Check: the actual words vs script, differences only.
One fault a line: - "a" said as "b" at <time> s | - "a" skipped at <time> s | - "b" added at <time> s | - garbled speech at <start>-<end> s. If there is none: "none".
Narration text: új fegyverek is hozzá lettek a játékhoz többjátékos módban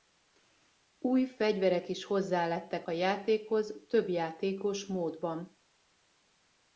none